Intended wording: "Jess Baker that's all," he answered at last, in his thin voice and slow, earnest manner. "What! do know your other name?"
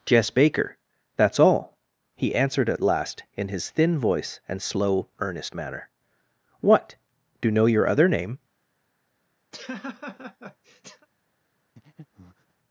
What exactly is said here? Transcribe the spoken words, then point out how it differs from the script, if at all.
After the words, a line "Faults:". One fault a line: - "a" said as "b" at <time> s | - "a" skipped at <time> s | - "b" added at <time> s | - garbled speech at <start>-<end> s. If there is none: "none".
"Jess Baker that's all," he answered at last, in his thin voice and slow, earnest manner. "What! do know your other name?"
Faults:
none